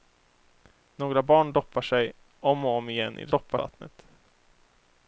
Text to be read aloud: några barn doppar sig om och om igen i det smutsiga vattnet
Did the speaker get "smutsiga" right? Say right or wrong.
wrong